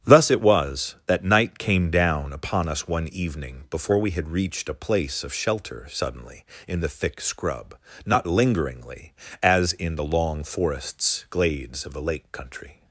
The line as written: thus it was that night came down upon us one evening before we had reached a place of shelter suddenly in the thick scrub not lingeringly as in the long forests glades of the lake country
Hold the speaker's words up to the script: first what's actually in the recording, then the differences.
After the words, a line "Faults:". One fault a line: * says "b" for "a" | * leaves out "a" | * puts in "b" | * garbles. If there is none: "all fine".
thus it was that night came down upon us one evening before we had reached a place of shelter suddenly in the thick scrub not lingeringly as in the long forests glades of the lake country
Faults:
all fine